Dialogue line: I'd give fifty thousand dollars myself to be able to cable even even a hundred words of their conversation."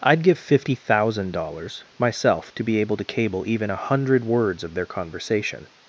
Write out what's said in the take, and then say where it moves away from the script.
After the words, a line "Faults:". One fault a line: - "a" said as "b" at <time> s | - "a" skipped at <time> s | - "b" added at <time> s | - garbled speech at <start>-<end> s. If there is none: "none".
I'd give fifty thousand dollars myself to be able to cable even a hundred words of their conversation."
Faults:
- "even" skipped at 3.7 s